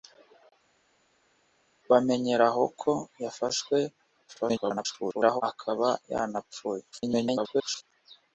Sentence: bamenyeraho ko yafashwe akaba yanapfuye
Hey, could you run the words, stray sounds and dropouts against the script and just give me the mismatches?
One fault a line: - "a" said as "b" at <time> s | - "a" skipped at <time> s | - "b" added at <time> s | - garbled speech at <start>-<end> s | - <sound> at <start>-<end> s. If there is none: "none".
- garbled speech at 4.3-5.4 s
- garbled speech at 6.9-7.8 s